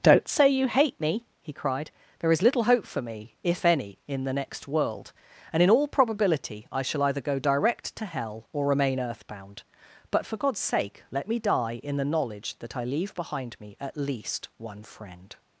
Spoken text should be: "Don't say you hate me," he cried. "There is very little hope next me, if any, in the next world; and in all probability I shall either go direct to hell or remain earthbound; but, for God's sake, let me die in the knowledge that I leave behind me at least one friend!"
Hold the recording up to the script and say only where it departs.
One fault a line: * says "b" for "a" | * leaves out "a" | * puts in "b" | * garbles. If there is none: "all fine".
* leaves out "very"
* says "for" for "next"